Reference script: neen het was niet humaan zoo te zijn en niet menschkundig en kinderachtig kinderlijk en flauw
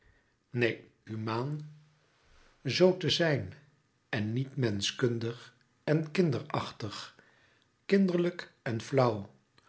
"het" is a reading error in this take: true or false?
true